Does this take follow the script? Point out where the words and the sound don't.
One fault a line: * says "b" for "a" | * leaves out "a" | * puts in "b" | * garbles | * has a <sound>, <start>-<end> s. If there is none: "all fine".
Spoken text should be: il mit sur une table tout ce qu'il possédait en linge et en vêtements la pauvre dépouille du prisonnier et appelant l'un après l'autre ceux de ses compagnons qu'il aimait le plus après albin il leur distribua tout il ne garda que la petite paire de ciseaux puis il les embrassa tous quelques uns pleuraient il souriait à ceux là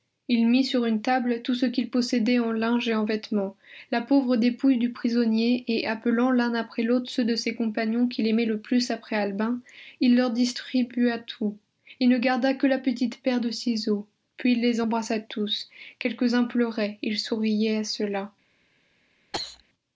* has a cough, 19.3-19.6 s